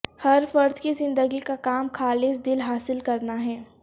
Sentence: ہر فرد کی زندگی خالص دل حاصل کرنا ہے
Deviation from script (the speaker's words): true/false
true